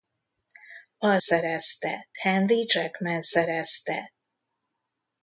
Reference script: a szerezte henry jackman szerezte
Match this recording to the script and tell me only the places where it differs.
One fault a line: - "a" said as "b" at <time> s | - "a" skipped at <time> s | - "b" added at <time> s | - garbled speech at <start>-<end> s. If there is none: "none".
none